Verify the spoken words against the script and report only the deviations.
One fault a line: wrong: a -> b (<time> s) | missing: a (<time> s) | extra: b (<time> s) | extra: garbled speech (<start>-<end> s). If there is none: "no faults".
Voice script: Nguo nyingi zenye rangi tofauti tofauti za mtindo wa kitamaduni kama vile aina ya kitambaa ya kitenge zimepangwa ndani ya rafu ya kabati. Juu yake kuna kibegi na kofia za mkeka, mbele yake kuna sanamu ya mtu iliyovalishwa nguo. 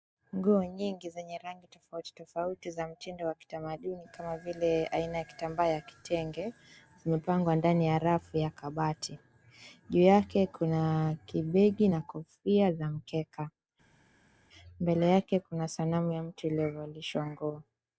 no faults